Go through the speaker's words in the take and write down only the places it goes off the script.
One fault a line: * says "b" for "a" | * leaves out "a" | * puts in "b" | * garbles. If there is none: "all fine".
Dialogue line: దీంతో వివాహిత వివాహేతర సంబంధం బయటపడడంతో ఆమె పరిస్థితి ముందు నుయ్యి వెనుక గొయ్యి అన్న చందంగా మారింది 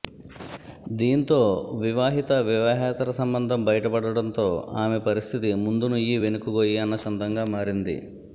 all fine